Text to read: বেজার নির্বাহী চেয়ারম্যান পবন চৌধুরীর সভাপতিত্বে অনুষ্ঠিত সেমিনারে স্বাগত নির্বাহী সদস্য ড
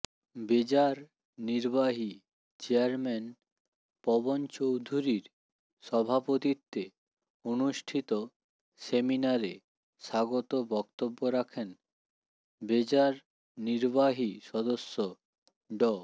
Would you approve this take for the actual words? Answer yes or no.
no